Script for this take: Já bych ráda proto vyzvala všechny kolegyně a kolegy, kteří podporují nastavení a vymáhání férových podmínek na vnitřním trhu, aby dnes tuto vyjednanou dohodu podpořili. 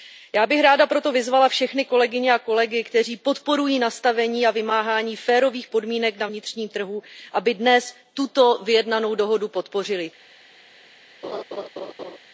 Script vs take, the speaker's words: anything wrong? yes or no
no